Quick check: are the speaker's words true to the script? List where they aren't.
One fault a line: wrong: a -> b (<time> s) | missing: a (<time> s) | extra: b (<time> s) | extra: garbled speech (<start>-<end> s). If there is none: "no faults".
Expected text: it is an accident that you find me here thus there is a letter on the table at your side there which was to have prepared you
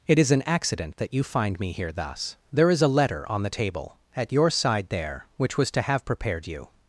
no faults